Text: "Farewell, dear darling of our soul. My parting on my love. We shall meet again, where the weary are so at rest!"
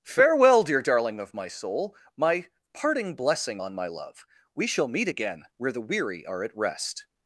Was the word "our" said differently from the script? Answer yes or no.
yes